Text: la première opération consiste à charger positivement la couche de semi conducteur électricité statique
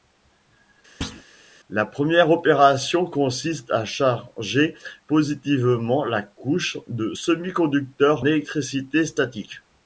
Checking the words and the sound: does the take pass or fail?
fail